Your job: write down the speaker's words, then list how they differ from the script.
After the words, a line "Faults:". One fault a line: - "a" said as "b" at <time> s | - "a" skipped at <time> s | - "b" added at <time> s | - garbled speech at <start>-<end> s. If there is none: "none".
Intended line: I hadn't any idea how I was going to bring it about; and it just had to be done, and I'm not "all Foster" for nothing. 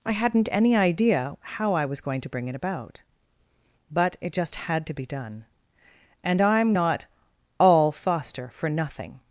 I hadn't any idea how I was going to bring it about; but it just had to be done, and I'm not "all Foster" for nothing.
Faults:
- "and" said as "but" at 3.9 s